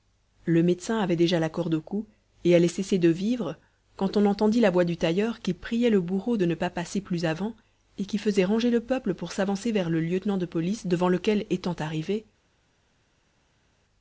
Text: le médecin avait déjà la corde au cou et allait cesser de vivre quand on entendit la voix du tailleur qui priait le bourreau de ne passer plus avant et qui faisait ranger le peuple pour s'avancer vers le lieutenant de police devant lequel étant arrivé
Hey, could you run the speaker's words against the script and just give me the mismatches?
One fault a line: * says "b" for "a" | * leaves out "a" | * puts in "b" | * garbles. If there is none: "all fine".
* puts in "pas"